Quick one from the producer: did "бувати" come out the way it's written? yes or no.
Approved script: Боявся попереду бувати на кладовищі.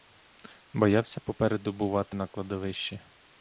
yes